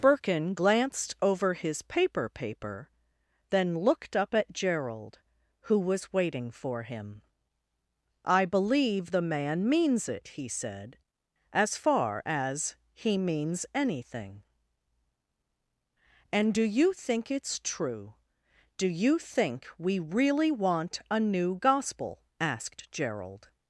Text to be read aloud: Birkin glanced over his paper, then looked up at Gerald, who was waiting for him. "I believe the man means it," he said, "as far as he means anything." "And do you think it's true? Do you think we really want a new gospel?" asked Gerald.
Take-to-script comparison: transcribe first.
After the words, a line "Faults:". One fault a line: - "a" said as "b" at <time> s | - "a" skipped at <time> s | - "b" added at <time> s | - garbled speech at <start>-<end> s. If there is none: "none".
Birkin glanced over his paper paper, then looked up at Gerald, who was waiting for him. "I believe the man means it," he said, "as far as he means anything." "And do you think it's true? Do you think we really want a new gospel?" asked Gerald.
Faults:
- "paper" added at 2.3 s